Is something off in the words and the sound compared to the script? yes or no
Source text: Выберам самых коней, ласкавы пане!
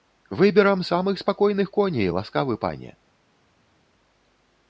yes